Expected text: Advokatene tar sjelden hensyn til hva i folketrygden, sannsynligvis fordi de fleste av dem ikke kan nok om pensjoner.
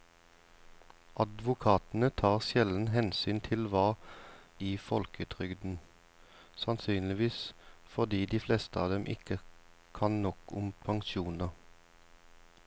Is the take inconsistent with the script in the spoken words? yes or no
no